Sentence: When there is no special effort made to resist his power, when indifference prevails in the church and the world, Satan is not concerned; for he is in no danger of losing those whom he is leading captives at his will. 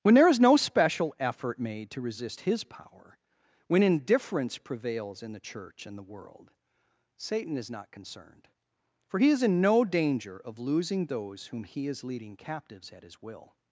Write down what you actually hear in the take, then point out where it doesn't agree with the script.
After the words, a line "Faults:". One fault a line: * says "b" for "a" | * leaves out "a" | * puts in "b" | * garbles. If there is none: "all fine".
When there is no special effort made to resist his power, when indifference prevails in the church and the world, Satan is not concerned; for he is in no danger of losing those whom he is leading captives at his will.
Faults:
all fine